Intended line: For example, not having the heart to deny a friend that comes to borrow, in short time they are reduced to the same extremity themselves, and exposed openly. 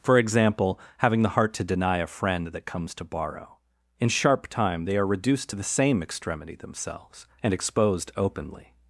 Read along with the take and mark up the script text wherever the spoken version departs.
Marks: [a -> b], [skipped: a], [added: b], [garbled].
For example, [skipped: not] having the heart to deny a friend that comes to borrow, in [short -> sharp] time they are reduced to the same extremity themselves, and exposed openly.